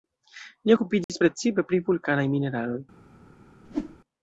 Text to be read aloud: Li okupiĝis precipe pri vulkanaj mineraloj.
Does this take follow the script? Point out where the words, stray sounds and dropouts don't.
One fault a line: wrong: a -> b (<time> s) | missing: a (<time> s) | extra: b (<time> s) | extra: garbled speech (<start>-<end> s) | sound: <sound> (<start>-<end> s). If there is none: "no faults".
sound: dropout (1.0-1.1 s)
sound: whoosh (3.6-4.0 s)